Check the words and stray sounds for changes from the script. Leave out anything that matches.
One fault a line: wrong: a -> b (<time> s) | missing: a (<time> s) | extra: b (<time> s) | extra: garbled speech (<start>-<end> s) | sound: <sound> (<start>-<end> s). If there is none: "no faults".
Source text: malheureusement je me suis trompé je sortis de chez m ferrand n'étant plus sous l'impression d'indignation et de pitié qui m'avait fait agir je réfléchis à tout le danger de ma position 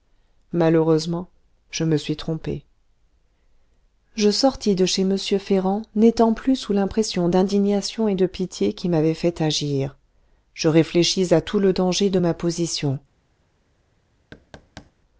sound: thud (14.3-14.9 s)